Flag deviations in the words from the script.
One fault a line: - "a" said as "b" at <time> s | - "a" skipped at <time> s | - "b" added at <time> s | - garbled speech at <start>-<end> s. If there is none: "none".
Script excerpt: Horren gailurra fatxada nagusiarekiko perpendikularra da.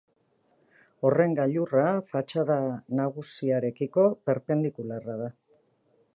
none